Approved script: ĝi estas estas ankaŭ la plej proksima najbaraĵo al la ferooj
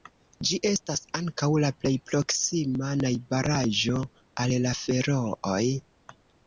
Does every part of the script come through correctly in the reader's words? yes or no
no